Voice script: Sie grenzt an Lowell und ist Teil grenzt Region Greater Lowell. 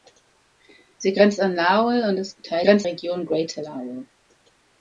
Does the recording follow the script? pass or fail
pass